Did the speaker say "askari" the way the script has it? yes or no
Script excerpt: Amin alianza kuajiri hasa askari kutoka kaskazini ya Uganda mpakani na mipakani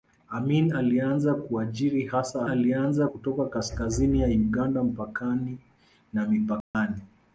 no